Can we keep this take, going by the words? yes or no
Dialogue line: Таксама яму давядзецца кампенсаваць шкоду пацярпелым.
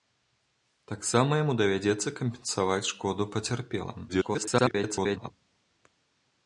no